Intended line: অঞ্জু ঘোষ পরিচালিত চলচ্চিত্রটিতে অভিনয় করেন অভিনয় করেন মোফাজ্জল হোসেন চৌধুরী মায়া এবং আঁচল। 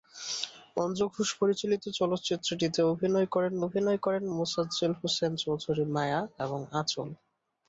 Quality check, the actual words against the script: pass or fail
pass